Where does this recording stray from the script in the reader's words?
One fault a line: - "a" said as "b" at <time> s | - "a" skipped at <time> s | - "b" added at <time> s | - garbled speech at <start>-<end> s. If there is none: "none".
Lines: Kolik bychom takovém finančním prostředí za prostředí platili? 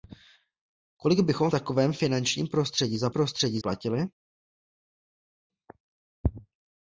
none